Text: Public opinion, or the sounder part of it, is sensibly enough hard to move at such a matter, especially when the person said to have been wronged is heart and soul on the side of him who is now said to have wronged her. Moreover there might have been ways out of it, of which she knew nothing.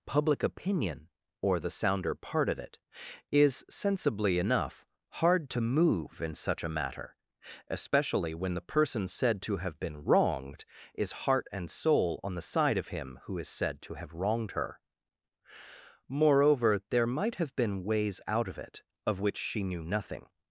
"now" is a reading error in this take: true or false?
true